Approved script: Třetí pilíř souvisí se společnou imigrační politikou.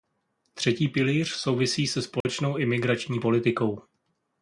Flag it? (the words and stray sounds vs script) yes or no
yes